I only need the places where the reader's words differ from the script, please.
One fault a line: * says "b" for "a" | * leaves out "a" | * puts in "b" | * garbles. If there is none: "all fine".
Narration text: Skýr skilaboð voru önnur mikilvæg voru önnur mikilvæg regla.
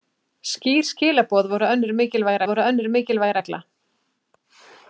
all fine